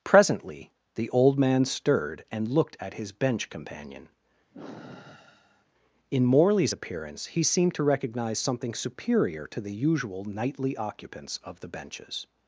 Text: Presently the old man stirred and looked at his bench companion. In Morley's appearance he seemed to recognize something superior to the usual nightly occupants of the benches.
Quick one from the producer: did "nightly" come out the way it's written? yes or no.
yes